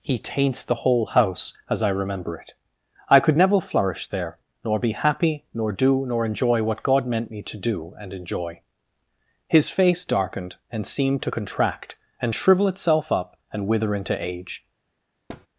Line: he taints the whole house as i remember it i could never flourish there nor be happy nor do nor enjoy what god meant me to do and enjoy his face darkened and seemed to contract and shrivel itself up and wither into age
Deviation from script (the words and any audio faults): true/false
true